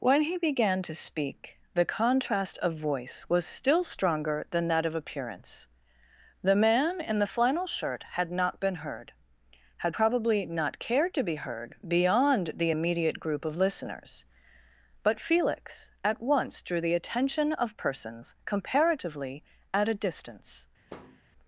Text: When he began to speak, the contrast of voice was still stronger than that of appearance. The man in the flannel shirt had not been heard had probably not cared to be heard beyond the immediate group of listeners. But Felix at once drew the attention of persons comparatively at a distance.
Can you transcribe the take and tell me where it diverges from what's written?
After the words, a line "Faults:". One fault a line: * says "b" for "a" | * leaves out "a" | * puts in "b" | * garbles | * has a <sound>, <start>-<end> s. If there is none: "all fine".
When he began to speak, the contrast of voice was still stronger than that of appearance. The man in the flannel shirt had not been heard had probably not cared to be heard beyond the immediate group of listeners. But Felix at once drew the attention of persons comparatively at a distance.
Faults:
* has a thud, 20.9-21.2 s